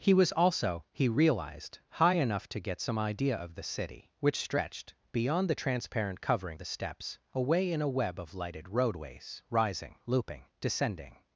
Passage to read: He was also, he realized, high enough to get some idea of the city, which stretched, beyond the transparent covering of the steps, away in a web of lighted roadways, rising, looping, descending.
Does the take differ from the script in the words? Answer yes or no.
yes